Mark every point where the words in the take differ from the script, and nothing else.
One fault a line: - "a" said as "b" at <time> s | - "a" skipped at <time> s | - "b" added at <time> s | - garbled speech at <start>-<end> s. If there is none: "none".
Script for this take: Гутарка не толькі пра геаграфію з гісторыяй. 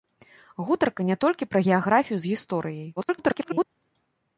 - garbled speech at 3.0-3.6 s